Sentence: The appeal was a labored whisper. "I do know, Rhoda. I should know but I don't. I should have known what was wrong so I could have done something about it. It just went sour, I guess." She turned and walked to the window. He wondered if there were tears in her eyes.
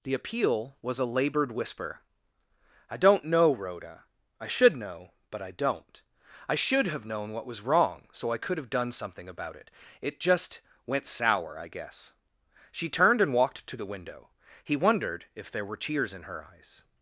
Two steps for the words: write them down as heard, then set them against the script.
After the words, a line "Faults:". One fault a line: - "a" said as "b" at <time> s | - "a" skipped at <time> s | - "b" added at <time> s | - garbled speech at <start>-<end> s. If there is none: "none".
The appeal was a labored whisper. "I don't know, Rhoda. I should know but I don't. I should have known what was wrong so I could have done something about it. It just went sour, I guess." She turned and walked to the window. He wondered if there were tears in her eyes.
Faults:
- "do" said as "don't" at 3.0 s